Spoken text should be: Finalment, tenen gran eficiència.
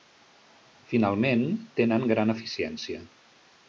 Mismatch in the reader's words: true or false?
false